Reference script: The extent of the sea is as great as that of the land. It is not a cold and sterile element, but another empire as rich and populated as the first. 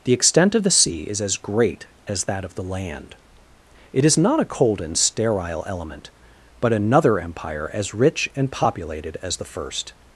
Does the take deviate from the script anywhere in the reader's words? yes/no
no